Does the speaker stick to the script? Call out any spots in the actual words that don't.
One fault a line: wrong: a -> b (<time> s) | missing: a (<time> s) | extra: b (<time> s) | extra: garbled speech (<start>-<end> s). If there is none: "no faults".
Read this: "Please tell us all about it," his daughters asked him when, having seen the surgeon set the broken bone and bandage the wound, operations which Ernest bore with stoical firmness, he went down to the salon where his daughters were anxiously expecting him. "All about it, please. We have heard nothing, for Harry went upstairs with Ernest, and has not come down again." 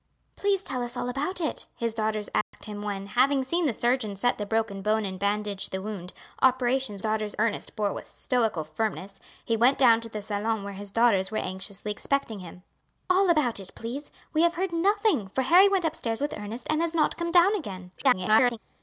wrong: which -> daughters (7.0 s)
extra: garbled speech (18.0-18.6 s)